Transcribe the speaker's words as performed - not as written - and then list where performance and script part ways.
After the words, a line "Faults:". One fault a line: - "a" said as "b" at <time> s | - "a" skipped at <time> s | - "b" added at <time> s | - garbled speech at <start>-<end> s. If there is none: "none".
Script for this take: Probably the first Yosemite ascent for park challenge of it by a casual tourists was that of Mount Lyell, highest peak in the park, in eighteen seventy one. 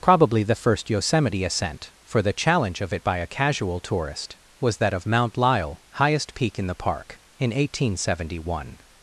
Probably the first Yosemite ascent for the challenge of it by a casual tourist was that of Mount Lyell, highest peak in the park, in eighteen seventy one.
Faults:
- "park" said as "the" at 2.2 s
- "tourists" said as "tourist" at 3.8 s